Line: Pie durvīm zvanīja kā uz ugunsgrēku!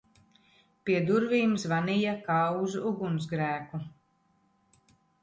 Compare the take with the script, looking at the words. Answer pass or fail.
pass